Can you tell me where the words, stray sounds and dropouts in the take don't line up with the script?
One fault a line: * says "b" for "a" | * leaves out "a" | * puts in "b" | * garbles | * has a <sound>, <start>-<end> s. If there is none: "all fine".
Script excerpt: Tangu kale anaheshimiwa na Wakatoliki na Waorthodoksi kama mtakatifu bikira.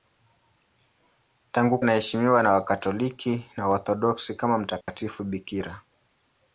* leaves out "kale"
* has a dropout, 4.8-4.9 s